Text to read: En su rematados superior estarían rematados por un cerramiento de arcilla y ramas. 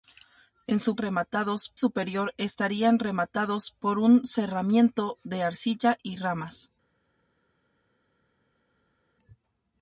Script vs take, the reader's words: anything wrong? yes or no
no